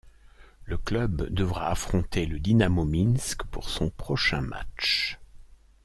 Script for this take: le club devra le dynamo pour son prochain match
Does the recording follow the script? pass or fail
fail